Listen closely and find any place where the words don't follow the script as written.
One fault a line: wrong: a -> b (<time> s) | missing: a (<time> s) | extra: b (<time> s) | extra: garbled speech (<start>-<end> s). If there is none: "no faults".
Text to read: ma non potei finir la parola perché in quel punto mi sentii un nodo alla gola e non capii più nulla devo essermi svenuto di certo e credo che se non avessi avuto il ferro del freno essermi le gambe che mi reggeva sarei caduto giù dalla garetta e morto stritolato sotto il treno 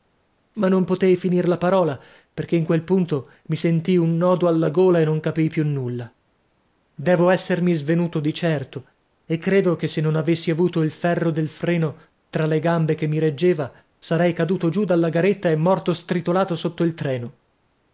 wrong: essermi -> tra (12.3 s)